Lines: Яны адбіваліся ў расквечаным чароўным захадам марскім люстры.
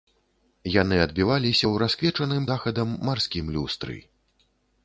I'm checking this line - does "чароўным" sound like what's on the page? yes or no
no